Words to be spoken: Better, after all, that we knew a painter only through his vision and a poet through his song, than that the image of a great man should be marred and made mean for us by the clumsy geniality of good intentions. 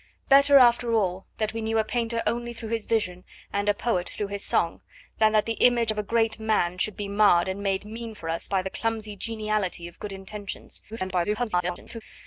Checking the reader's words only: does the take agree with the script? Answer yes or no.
no